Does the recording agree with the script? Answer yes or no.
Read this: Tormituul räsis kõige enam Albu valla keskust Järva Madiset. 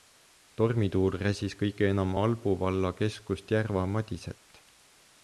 yes